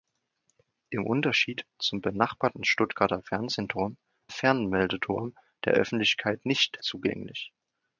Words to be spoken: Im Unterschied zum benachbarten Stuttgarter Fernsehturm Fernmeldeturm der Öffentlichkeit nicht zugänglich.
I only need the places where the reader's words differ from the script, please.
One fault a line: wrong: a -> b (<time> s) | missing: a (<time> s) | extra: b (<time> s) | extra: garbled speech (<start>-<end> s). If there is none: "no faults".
no faults